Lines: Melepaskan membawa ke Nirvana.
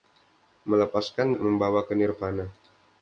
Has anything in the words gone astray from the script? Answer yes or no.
no